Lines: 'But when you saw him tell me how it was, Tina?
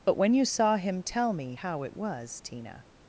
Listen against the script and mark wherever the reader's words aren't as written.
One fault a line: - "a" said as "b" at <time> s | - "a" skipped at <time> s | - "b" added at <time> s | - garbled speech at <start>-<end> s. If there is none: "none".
none